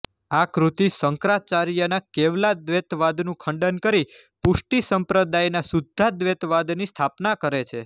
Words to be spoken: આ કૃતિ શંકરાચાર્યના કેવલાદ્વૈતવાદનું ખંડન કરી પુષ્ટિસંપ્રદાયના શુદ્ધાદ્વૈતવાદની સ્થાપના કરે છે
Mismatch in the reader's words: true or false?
false